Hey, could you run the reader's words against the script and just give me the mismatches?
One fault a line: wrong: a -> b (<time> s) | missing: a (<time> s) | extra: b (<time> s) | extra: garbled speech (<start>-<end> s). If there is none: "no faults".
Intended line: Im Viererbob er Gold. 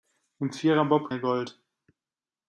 no faults